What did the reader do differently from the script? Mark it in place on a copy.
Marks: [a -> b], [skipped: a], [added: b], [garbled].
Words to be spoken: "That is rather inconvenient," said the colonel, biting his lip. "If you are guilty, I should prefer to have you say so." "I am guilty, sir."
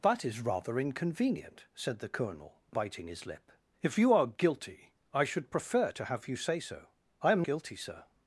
"That is rather inconvenient," said the colonel, biting his lip. "If you are guilty, I should prefer to have you say so." "I am guilty, sir."